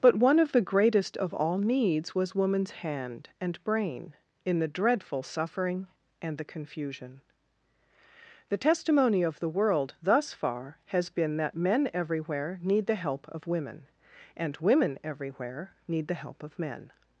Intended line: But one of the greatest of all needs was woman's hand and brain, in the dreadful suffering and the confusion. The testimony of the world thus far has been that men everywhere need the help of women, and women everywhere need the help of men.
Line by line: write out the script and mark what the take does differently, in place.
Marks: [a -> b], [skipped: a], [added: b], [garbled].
But one of the greatest of all needs was woman's hand and brain, in the dreadful suffering and the confusion. The testimony of the world thus far has been that men everywhere need the help of women, and women everywhere need the help of men.